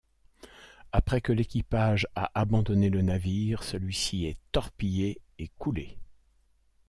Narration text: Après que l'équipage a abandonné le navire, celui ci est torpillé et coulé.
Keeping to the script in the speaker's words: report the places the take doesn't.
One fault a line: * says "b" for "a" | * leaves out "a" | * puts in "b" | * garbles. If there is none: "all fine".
all fine